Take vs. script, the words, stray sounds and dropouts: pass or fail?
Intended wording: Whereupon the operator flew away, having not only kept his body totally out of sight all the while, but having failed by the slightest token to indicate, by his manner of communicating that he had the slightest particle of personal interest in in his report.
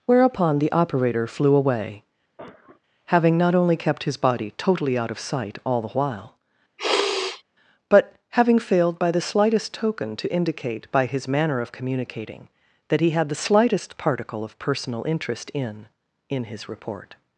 fail